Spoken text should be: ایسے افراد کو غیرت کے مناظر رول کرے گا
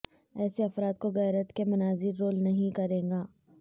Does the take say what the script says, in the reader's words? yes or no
no